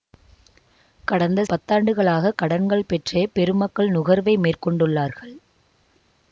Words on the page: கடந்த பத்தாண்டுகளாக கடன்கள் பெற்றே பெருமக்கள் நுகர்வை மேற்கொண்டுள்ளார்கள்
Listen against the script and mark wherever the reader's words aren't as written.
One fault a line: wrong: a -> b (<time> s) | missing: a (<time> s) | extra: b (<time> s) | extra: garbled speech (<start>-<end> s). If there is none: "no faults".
no faults